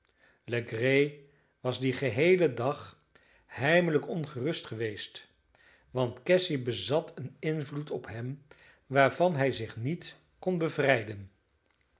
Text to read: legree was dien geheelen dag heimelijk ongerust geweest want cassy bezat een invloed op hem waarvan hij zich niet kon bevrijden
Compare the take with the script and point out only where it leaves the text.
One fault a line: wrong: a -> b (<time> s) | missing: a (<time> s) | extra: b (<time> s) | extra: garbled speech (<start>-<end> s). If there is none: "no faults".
no faults